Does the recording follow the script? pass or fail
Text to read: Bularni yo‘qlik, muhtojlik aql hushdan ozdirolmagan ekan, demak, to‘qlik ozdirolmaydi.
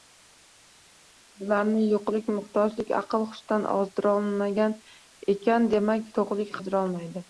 pass